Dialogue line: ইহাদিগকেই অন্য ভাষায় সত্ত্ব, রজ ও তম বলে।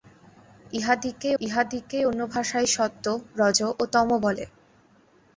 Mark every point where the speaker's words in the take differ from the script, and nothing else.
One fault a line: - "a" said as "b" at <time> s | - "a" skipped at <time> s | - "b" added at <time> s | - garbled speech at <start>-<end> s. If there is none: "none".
- "ইহাদিগকেই" added at 1.4 s